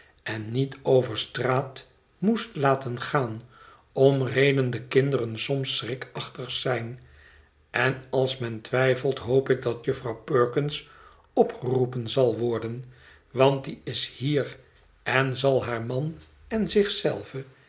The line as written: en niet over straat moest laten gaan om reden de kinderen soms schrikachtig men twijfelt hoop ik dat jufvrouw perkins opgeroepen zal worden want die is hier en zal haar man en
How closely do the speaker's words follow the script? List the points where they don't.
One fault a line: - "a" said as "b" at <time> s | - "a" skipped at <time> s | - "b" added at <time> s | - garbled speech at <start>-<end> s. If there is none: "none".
- "zijn en als" added at 6.5 s